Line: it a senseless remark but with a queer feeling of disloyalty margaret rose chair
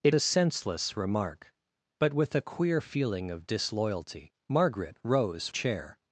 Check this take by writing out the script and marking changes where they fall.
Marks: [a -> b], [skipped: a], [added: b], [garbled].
it a senseless remark but with a queer feeling of disloyalty margaret rose chair